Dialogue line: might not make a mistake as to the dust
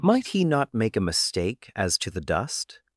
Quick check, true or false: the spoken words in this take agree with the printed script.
false